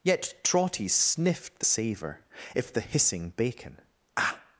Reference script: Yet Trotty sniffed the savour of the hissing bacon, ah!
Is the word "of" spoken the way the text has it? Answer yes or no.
no